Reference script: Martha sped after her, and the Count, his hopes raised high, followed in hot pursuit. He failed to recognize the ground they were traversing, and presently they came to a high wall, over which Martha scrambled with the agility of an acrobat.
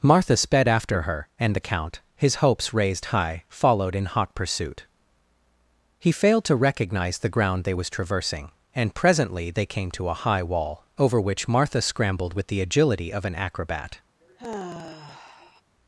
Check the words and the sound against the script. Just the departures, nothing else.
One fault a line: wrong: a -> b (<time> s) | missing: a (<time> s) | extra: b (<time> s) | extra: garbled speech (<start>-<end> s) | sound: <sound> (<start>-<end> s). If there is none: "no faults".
wrong: were -> was (7.7 s)
sound: sigh (14.2-15.6 s)